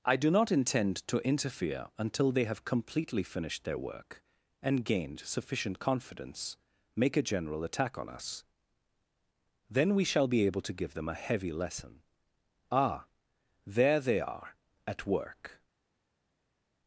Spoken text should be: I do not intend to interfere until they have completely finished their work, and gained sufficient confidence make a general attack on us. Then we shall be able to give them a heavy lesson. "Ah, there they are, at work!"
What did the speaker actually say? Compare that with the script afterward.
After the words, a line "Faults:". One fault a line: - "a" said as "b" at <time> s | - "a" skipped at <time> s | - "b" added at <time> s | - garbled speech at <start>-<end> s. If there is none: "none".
I do not intend to interfere until they have completely finished their work, and gained sufficient confidence make a general attack on us. Then we shall be able to give them a heavy lesson. "Ah, there they are, at work!"
Faults:
none